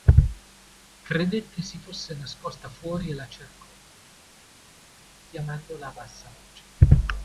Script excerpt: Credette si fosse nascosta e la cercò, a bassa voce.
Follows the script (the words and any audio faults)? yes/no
no